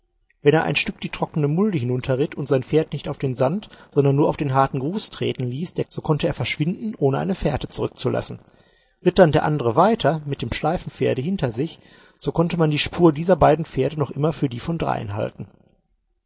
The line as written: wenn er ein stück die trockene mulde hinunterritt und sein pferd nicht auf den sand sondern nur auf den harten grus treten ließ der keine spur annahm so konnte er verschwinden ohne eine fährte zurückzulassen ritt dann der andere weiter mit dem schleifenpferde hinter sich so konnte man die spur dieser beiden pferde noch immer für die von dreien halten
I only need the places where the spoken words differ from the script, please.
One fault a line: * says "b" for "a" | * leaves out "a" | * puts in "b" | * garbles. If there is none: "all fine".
* leaves out "keine spur annahm"